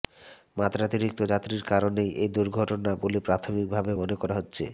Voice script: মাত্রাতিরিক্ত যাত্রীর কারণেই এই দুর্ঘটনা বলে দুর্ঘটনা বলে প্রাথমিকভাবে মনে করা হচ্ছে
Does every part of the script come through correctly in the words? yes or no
no